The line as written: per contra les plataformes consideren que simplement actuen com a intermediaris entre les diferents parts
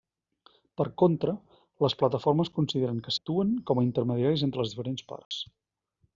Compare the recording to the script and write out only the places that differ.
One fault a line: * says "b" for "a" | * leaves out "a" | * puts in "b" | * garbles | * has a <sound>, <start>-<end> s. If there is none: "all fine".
* leaves out "simplement"
* has a dropout, 5.2-5.3 s